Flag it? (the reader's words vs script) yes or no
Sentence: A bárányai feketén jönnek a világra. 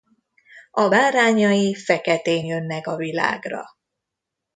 no